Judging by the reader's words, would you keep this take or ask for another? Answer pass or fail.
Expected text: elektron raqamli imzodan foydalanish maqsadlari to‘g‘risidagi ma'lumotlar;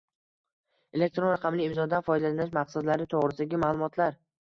pass